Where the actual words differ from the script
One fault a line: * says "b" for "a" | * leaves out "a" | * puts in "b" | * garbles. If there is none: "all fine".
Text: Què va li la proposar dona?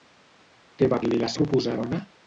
all fine